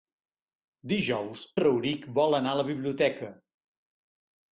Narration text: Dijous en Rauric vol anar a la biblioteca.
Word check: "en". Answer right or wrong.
wrong